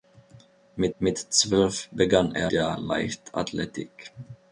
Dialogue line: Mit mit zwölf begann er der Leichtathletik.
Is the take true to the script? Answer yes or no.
yes